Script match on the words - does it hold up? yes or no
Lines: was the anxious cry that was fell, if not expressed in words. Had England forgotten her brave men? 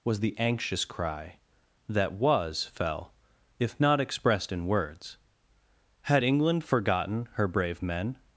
yes